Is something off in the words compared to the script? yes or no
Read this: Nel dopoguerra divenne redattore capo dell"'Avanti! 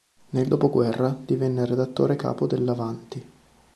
no